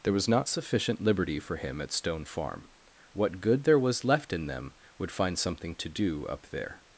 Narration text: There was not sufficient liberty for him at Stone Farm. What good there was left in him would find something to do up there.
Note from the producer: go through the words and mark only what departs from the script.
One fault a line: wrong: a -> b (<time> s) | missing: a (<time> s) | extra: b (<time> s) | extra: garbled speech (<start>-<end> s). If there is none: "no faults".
wrong: him -> them (4.5 s)